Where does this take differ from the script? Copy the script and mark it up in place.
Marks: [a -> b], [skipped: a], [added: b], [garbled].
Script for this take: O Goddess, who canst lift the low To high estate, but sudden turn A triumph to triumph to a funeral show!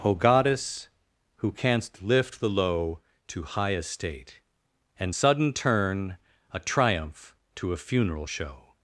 O Goddess, who canst lift the low To high estate, [but -> and] sudden turn A triumph to [skipped: triumph to] a funeral show!